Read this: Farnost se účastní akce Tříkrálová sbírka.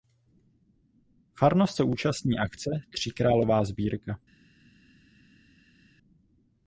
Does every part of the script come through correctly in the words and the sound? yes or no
yes